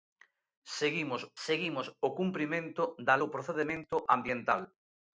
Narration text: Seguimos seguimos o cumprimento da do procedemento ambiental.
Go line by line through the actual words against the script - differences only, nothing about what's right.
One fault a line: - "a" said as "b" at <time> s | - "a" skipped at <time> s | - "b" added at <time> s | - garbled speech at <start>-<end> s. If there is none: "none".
none